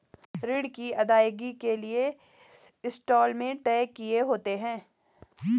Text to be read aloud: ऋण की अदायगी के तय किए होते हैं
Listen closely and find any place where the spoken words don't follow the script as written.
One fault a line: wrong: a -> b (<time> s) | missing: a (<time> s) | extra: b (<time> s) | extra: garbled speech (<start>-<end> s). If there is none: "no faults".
extra: लिए इंस्टॉलमेंट (1.7 s)